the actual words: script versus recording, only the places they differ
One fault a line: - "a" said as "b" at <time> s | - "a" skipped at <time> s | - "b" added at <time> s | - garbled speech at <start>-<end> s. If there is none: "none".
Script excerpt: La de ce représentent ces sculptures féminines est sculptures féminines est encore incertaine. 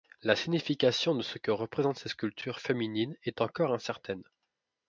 - "signification" added at 0.3 s
- "que" added at 1.4 s
- "sculptures féminines est" skipped at 3.4 s